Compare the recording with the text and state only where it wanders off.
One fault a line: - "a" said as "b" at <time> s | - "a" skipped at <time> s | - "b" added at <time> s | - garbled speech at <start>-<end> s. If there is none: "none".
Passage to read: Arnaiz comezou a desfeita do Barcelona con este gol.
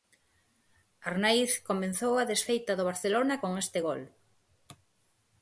none